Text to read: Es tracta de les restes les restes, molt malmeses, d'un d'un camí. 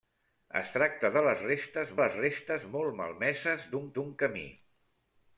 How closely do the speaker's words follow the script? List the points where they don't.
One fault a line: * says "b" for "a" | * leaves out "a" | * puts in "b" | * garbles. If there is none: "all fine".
all fine